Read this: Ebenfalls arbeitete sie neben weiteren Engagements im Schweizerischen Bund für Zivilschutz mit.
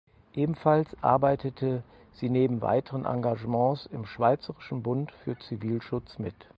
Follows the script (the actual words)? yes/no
yes